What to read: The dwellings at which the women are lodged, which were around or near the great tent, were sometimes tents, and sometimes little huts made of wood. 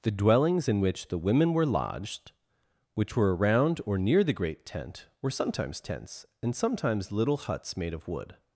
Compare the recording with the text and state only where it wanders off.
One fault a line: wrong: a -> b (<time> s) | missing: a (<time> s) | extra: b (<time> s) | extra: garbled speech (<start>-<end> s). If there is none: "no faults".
wrong: at -> in (0.7 s)
wrong: are -> were (1.5 s)